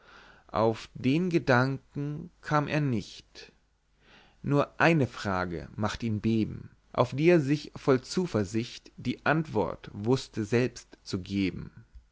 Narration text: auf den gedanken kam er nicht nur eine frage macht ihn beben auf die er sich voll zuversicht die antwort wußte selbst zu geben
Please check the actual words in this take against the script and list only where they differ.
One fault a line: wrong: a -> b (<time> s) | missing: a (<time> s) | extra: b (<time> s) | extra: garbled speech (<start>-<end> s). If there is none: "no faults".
no faults